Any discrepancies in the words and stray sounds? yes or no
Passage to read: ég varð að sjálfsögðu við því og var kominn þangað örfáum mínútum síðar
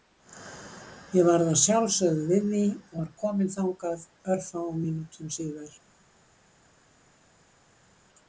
no